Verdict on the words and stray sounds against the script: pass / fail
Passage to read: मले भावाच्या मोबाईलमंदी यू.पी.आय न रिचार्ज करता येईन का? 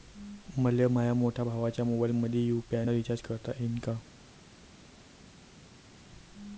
fail